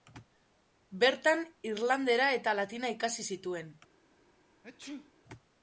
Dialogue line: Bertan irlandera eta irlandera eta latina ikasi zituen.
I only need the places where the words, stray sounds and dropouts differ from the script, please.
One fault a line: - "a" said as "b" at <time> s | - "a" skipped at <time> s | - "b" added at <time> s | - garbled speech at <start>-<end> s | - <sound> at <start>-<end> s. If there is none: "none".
- "irlandera eta" skipped at 2.5 s
- sneeze at 4.6-5.1 s